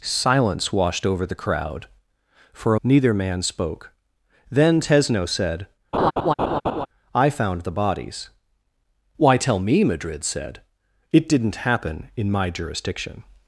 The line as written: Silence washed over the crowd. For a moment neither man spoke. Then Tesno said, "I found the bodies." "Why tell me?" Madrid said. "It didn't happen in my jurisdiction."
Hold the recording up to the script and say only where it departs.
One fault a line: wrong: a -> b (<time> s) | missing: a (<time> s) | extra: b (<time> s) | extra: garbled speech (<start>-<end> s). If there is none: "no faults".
missing: a moment (2.8 s)